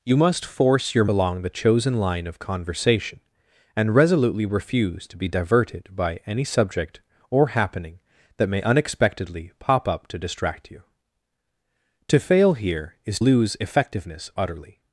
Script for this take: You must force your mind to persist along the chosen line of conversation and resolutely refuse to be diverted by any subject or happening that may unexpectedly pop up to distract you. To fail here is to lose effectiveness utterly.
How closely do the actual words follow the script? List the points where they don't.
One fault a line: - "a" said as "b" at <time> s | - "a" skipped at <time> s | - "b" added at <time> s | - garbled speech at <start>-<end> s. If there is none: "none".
- "mind to persist" skipped at 1.1 s
- "to" skipped at 13.2 s